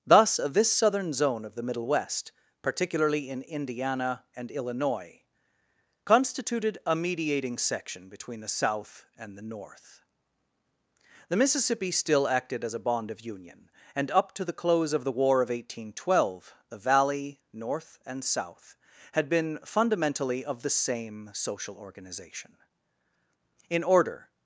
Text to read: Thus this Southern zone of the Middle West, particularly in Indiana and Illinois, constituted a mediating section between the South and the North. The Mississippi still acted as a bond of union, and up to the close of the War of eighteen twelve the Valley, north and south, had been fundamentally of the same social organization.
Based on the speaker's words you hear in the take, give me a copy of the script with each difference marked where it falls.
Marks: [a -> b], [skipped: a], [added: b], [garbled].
Thus this Southern zone of the Middle West, particularly in Indiana and Illinois, constituted a mediating section between the South and the North. The Mississippi still acted as a bond of union, and up to the close of the War of eighteen twelve the Valley, north and south, had been fundamentally of the same social organization. [added: In order]